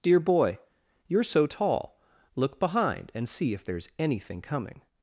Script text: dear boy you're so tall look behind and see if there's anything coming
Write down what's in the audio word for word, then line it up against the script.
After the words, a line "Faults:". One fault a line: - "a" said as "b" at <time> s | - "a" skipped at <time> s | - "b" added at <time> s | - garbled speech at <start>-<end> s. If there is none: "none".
dear boy you're so tall look behind and see if there's anything coming
Faults:
none